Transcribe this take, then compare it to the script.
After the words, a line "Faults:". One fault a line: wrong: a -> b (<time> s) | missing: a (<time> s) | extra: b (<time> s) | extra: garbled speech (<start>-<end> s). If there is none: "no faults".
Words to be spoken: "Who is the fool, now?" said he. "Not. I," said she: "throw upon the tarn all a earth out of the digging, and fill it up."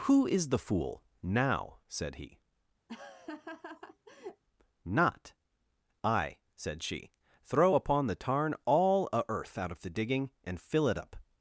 "Who is the fool, now?" said he. "Not. I," said she: "throw upon the tarn all a earth out of the digging, and fill it up."
Faults:
no faults